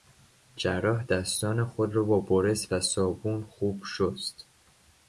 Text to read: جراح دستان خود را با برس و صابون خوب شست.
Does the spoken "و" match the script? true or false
true